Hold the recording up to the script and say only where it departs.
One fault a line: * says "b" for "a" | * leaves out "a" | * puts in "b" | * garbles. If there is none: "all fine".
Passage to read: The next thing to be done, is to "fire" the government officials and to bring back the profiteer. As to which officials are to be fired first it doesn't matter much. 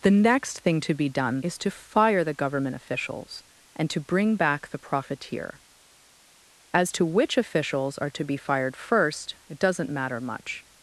all fine